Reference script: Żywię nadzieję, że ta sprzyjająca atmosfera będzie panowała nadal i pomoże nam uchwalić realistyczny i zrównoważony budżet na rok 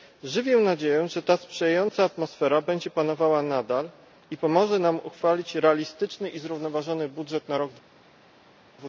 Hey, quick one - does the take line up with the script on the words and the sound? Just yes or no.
yes